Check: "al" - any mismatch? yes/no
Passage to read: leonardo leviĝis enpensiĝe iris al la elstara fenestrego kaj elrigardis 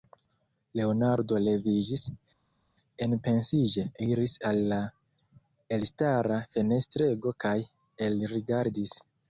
no